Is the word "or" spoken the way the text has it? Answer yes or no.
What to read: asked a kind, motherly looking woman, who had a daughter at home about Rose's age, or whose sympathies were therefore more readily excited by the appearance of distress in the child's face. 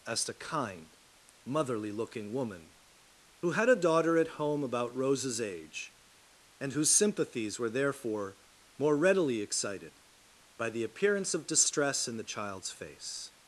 no